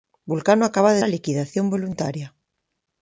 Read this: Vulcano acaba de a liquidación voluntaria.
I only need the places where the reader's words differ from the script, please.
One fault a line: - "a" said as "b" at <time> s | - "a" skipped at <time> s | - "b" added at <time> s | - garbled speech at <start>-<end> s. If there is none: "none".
none